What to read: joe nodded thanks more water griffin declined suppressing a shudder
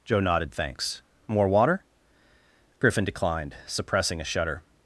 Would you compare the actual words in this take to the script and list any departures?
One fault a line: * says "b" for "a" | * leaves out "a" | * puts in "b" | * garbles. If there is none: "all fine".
all fine